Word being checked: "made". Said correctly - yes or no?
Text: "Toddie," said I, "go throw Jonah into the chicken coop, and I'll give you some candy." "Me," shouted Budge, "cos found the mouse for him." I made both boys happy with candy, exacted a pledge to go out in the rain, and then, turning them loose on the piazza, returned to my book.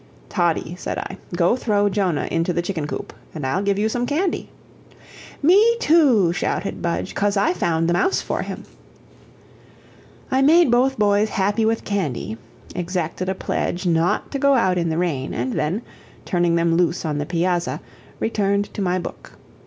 yes